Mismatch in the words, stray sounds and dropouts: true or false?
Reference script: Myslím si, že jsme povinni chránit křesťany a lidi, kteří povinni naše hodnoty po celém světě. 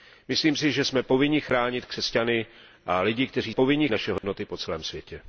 true